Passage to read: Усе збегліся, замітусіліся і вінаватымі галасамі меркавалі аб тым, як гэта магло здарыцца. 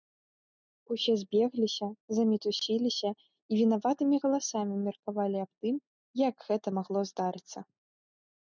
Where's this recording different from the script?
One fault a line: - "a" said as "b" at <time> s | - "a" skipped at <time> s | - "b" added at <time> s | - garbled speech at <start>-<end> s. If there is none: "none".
none